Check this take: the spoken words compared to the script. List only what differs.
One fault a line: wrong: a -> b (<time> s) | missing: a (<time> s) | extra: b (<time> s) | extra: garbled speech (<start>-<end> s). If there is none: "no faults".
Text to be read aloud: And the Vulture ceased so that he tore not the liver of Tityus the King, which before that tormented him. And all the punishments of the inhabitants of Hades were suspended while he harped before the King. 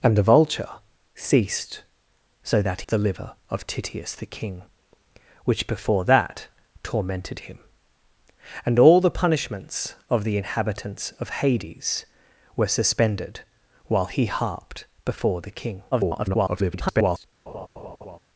missing: he tore not (2.8 s)
extra: garbled speech (15.9-17.2 s)